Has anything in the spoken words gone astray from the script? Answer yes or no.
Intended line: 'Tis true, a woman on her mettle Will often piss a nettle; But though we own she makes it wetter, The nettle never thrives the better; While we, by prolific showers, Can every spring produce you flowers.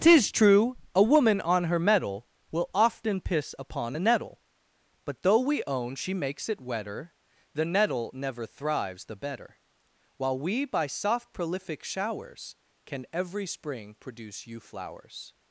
yes